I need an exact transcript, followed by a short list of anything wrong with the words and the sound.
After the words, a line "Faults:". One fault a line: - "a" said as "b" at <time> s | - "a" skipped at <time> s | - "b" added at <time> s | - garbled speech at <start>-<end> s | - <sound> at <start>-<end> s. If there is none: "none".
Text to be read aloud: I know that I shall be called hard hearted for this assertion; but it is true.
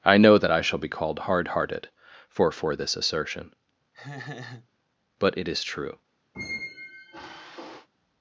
I know that I shall be called hard hearted for for this assertion; but it is true.
Faults:
- "for" added at 2.5 s
- laugh at 3.9-4.7 s
- squeak at 6.3-7.9 s